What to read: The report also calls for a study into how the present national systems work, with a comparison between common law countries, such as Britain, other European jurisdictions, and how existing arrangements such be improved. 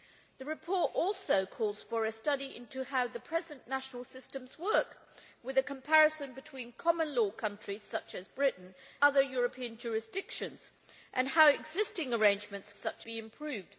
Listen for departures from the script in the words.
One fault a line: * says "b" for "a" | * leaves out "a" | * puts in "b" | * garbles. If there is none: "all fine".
all fine